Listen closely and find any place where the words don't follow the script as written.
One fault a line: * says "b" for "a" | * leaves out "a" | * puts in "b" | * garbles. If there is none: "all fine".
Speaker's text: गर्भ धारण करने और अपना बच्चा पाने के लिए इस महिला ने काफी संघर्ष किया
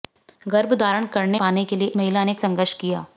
* leaves out "और अपना बच्चा"
* leaves out "इस"
* leaves out "काफी"